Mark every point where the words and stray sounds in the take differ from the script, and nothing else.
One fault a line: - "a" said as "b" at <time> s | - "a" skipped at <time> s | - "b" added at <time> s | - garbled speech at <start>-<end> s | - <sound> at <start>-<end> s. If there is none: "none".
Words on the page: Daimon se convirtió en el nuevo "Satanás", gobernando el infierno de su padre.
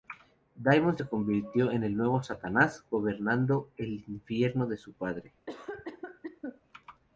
- cough at 5.5-6.6 s